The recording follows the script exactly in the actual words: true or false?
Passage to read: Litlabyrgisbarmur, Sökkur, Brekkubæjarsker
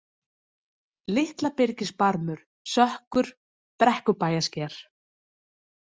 true